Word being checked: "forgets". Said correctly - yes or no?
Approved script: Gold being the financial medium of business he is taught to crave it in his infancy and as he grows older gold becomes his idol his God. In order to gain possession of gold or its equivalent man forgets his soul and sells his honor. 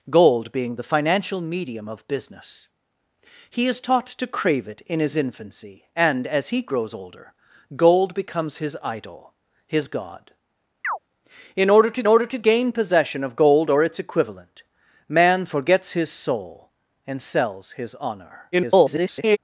yes